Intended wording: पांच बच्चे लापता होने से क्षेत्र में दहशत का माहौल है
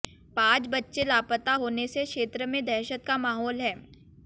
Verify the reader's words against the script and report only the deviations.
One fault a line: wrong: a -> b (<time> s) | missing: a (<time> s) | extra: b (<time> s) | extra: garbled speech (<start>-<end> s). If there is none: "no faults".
no faults